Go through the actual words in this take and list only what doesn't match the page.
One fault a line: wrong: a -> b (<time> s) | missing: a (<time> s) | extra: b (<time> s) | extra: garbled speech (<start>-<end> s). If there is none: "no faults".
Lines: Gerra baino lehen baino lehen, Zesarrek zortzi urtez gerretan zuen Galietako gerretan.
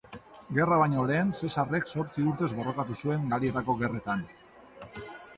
missing: baino lehen (1.3 s)
wrong: gerretan -> borrokatu (2.6 s)